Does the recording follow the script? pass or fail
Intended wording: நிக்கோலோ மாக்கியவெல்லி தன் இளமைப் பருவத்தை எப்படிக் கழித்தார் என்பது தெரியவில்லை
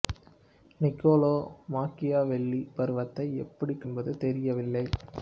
fail